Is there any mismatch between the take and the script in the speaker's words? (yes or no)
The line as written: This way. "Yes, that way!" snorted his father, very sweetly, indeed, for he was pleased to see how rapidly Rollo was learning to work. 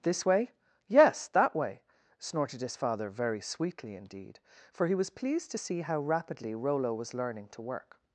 no